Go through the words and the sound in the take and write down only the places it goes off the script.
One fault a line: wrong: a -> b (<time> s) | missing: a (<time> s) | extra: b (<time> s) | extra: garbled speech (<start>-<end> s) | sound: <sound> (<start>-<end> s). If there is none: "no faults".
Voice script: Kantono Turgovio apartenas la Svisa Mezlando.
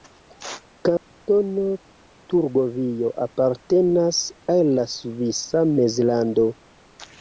sound: dropout (1.0-1.1 s)
extra: al (4.6 s)